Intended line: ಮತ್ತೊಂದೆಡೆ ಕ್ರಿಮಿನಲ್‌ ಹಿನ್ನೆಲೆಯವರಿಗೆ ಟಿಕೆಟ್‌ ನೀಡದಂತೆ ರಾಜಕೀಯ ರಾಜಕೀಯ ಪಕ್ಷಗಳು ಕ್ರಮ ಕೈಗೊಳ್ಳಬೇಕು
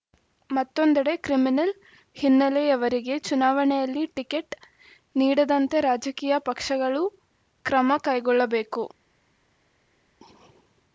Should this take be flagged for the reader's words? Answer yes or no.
yes